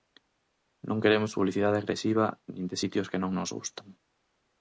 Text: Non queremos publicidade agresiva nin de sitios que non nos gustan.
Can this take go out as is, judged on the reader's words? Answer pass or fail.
pass